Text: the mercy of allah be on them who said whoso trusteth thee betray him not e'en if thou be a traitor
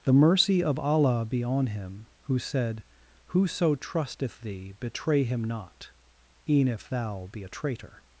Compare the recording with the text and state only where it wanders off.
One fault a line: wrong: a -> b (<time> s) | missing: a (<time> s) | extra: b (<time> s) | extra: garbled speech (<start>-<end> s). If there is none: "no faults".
wrong: them -> him (1.7 s)